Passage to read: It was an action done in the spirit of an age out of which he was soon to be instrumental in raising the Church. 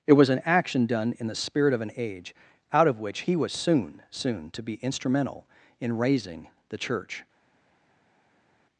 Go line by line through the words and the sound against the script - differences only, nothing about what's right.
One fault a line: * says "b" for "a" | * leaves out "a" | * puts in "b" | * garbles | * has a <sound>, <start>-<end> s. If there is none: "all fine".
* puts in "soon"